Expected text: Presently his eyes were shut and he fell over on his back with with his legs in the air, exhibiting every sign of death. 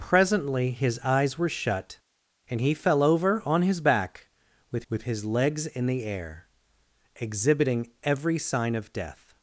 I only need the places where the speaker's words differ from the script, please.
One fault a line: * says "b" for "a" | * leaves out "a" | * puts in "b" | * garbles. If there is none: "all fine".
all fine